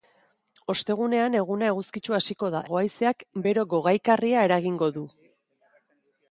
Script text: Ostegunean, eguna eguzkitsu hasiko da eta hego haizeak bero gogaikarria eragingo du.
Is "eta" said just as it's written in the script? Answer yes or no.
no